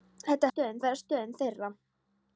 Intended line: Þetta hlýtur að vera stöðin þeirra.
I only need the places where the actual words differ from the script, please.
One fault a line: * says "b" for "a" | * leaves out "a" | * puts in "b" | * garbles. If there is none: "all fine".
* says "stöðin" for "hlýtur"